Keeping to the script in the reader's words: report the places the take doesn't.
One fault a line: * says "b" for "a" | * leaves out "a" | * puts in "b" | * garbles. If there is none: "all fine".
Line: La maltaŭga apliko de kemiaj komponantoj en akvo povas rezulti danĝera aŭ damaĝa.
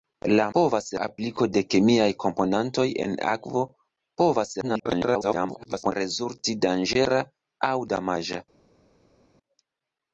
* says "povas" for "maltaŭga"
* garbles